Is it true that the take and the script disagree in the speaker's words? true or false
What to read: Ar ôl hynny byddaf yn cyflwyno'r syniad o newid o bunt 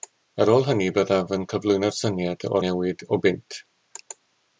false